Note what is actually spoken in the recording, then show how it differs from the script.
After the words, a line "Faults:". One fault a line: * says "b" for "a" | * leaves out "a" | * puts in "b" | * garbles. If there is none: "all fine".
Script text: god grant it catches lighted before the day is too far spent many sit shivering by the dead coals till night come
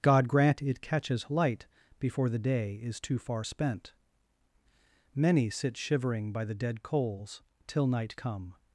god grant it catches light before the day is too far spent many sit shivering by the dead coals till night come
Faults:
* says "light" for "lighted"